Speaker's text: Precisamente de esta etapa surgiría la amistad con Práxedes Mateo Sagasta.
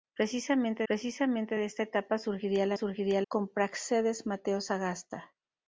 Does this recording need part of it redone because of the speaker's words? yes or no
yes